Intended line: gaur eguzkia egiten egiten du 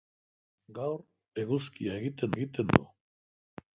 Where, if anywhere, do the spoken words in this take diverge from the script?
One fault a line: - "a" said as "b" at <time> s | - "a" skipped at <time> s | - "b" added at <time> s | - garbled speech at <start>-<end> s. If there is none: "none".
none